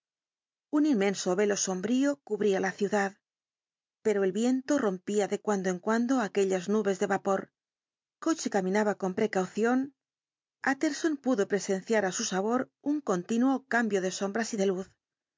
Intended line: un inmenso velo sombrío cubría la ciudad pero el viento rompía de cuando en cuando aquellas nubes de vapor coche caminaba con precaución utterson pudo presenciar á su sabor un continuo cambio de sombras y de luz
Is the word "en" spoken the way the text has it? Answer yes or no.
yes